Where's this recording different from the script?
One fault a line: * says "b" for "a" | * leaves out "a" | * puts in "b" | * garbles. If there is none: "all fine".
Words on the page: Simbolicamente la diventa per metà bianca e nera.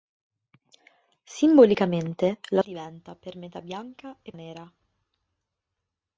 all fine